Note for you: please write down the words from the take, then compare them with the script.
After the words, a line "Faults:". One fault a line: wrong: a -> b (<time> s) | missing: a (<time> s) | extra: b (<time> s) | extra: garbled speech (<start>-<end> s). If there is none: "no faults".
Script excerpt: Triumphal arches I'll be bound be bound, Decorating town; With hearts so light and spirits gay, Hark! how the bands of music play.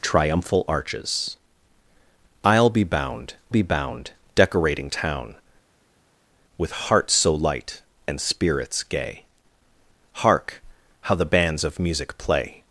Triumphal arches I'll be bound be bound, Decorating town; With hearts so light and spirits gay, Hark! how the bands of music play.
Faults:
no faults